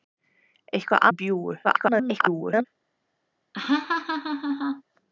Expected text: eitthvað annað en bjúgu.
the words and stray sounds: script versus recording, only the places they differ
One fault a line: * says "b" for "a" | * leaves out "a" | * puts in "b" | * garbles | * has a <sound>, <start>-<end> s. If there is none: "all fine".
* leaves out "annað"
* garbles
* has a laugh, 3.5-4.8 s